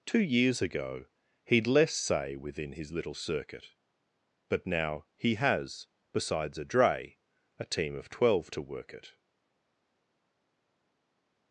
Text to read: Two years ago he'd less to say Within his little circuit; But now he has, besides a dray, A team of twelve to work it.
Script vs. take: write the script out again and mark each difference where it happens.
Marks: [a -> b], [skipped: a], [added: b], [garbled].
Two years ago he'd less [skipped: to] say Within his little circuit; But now he has, besides a dray, A team of twelve to work it.